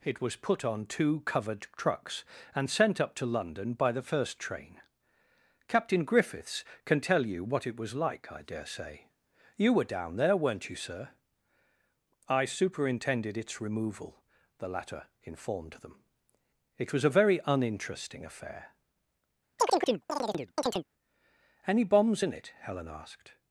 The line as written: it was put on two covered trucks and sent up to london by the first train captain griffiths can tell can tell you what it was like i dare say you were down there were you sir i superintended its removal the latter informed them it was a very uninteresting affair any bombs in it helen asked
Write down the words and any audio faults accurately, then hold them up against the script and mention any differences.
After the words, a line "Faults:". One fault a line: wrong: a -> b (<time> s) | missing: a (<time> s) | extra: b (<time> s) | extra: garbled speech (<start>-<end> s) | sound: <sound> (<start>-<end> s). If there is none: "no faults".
it was put on two covered trucks and sent up to london by the first train captain griffiths can tell you what it was like i dare say you were down there weren't you sir i superintended its removal the latter informed them it was a very uninteresting affair any bombs in it helen asked
Faults:
missing: can tell (7.2 s)
wrong: were -> weren't (10.3 s)
sound: chirp (19.6-20.9 s)